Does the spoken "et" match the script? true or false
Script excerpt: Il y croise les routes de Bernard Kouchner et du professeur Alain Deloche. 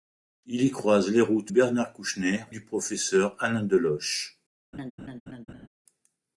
false